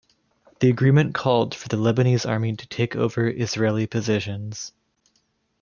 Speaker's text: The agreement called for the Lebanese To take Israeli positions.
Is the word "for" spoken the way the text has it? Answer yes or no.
yes